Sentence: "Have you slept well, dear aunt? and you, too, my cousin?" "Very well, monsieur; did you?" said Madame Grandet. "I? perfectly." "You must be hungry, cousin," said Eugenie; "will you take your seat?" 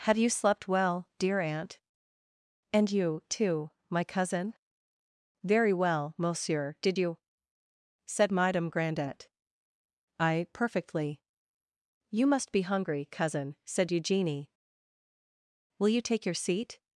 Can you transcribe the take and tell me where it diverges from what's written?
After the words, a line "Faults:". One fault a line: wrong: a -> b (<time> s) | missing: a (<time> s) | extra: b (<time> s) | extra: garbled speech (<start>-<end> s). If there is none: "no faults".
"Have you slept well, dear aunt? and you, too, my cousin?" "Very well, monsieur; did you?" said Madame Grandet. "I? perfectly." "You must be hungry, cousin," said Eugenie; "will you take your seat?"
Faults:
no faults